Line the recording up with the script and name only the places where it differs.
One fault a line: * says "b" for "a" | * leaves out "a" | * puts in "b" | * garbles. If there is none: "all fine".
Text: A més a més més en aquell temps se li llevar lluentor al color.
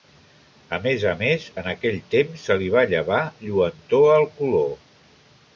* leaves out "més"
* puts in "va"